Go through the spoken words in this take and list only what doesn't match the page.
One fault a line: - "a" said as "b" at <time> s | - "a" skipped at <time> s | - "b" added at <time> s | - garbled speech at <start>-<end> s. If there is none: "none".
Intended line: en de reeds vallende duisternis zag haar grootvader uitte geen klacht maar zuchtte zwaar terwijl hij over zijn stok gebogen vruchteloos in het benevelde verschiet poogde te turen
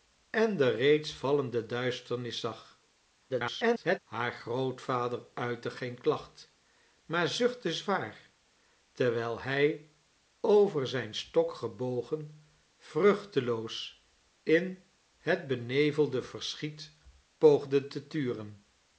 - garbled speech at 3.3-4.0 s